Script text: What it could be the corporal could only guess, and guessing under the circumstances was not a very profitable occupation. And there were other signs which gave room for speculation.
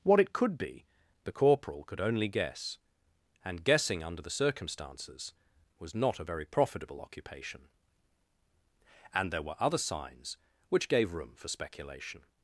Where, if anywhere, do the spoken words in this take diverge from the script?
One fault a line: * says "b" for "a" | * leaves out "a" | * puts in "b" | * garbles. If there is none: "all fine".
all fine